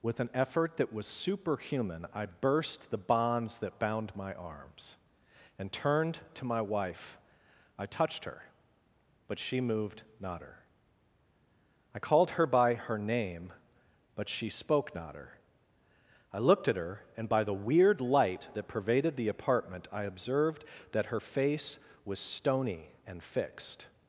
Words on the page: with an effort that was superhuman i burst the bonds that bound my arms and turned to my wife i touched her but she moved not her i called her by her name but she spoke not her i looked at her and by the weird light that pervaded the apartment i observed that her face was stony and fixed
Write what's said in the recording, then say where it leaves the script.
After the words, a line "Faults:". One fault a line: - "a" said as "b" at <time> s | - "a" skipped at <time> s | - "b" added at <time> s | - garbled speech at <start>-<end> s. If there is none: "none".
with an effort that was superhuman i burst the bonds that bound my arms and turned to my wife i touched her but she moved not her i called her by her name but she spoke not her i looked at her and by the weird light that pervaded the apartment i observed that her face was stony and fixed
Faults:
none